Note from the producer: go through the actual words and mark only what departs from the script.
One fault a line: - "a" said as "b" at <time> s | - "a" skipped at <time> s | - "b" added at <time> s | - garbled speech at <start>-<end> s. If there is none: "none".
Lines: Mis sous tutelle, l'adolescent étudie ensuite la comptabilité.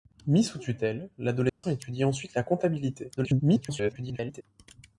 - garbled speech at 3.2-4.4 s